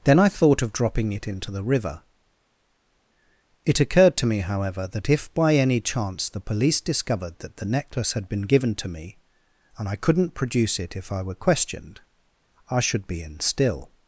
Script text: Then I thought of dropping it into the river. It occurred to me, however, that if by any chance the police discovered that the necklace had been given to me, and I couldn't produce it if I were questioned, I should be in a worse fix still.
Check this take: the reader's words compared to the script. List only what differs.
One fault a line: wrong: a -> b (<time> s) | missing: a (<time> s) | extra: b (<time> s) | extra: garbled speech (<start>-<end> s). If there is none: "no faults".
missing: a worse fix (13.4 s)